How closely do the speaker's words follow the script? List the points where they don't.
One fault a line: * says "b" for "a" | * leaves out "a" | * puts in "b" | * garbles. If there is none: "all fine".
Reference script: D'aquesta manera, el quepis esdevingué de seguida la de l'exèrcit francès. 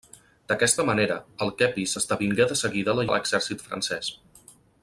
all fine